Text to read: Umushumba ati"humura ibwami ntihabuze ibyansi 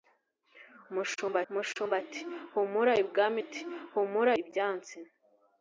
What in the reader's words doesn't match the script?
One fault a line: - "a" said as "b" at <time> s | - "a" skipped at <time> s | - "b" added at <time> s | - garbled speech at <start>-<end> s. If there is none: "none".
- "umushumba" added at 1.5 s
- "ntihabuze" said as "ati"humura" at 3.4 s